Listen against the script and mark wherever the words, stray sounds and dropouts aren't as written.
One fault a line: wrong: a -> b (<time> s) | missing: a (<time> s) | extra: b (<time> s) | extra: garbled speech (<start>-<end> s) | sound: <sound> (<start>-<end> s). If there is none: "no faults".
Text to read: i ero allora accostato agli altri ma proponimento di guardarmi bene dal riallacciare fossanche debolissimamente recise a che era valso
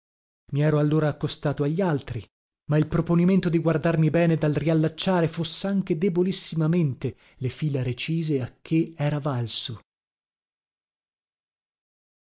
extra: il (2.8 s)
extra: le fila (7.4 s)